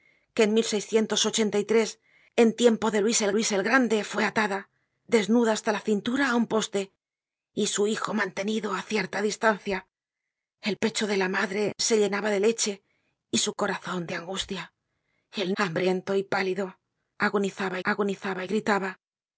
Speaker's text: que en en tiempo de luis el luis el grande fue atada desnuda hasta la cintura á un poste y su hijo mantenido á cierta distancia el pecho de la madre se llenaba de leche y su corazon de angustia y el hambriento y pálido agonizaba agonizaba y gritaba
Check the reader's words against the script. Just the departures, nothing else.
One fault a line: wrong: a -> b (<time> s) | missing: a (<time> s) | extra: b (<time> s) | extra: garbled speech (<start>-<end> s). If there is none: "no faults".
no faults